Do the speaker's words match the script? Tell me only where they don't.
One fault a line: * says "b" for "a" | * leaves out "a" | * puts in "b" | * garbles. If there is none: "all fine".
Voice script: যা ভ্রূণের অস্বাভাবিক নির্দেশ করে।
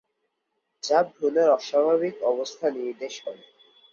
* puts in "অবস্থা"